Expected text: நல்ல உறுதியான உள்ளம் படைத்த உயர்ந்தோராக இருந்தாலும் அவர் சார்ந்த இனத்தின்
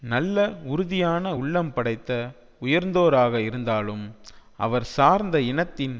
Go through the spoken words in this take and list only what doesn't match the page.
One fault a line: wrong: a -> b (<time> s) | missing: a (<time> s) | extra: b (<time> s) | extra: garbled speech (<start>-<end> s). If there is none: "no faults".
no faults